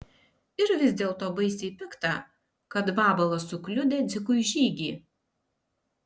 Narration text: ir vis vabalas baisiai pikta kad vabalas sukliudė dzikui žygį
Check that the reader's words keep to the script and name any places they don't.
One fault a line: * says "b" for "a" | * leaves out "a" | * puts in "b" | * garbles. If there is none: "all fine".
* says "dėlto" for "vabalas"